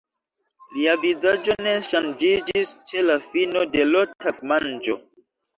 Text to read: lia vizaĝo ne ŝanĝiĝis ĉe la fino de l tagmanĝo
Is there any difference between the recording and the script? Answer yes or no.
no